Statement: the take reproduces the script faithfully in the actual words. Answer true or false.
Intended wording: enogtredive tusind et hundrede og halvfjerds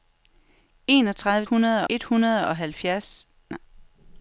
false